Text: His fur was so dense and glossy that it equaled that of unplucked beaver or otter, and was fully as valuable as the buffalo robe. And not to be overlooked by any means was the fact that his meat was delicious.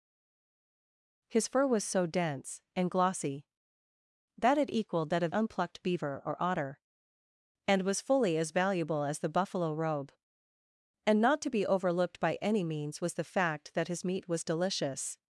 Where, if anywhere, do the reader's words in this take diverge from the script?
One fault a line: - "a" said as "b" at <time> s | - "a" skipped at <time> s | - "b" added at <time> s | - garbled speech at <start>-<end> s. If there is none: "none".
none